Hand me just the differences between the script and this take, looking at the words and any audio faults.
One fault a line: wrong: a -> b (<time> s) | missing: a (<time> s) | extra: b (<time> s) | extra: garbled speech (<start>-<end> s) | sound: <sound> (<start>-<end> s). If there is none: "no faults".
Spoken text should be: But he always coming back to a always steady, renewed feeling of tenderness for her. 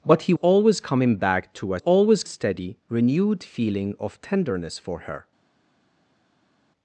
no faults